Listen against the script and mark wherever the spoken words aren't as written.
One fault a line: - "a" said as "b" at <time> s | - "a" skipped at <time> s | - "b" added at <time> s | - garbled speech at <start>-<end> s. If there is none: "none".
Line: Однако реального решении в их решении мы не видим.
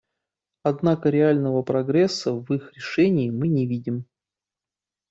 - "решении" said as "прогресса" at 1.6 s